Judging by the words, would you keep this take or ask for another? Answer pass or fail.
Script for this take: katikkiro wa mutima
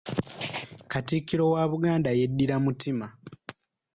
fail